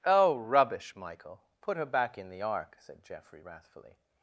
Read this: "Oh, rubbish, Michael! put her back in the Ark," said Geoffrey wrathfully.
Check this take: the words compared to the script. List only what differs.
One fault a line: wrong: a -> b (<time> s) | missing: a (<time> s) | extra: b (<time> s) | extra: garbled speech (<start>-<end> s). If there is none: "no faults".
no faults